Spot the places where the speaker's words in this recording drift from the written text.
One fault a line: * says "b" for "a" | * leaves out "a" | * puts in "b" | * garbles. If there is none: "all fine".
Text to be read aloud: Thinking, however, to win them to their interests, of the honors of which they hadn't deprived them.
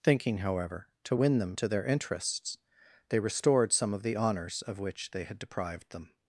* puts in "they restored some"
* says "had" for "hadn't"